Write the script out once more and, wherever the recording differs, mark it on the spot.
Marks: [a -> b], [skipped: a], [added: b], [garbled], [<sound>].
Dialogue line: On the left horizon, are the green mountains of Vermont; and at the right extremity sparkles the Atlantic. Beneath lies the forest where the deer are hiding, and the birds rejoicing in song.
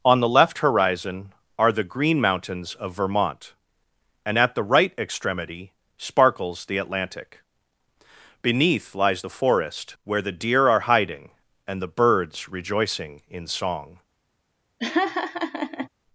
On the left horizon, are the green mountains of Vermont; and at the right extremity sparkles the Atlantic. Beneath lies the forest where the deer are hiding, and the birds rejoicing in song. [laugh]